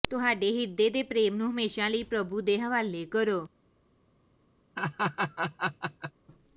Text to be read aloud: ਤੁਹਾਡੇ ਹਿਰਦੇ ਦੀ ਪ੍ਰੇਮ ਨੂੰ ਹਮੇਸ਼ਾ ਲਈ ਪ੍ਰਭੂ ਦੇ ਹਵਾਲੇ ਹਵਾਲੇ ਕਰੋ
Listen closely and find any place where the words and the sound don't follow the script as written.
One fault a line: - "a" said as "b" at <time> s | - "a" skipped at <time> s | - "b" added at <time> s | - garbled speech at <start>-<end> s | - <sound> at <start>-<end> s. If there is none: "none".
- "ਦੀ" said as "ਦੇ" at 0.9 s
- "ਹਵਾਲੇ" skipped at 3.0 s
- laugh at 4.8-6.1 s